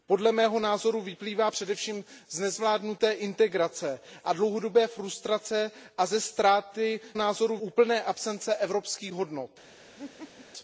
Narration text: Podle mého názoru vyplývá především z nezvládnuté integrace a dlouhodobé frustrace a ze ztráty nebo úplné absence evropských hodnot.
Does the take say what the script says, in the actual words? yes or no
no